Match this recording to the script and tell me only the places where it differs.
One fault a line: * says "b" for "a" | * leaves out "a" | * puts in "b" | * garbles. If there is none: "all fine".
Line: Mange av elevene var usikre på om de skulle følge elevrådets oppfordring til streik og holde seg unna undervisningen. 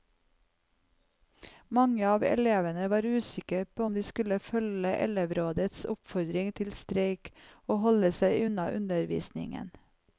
all fine